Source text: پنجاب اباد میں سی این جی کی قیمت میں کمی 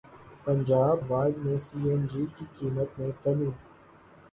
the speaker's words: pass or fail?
pass